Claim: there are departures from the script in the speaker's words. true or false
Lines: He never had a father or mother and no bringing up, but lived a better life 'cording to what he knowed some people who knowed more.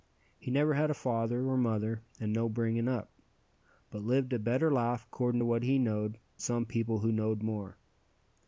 false